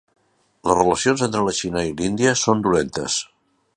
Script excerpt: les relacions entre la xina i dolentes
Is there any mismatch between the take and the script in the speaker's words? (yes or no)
yes